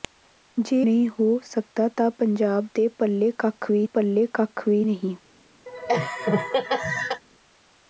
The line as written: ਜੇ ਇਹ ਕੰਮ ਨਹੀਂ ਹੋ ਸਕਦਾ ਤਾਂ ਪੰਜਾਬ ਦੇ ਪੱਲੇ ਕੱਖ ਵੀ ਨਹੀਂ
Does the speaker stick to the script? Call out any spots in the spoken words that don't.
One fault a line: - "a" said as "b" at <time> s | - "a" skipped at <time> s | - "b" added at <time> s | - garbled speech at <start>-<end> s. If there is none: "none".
- "ਇਹ ਕੰਮ" skipped at 0.8 s
- "ਪੱਲੇ ਕੱਖ ਵੀ" added at 3.9 s